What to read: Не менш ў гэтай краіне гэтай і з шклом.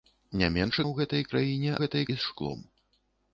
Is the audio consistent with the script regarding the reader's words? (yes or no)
yes